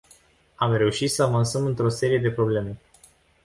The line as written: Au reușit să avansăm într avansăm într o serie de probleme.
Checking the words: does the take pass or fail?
fail